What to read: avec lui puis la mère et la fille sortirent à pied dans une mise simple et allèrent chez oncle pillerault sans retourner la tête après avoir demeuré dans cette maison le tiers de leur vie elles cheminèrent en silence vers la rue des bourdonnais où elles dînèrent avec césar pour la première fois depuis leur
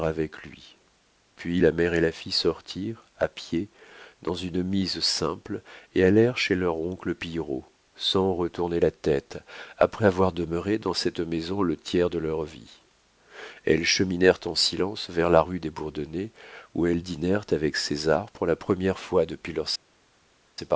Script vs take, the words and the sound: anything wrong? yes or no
yes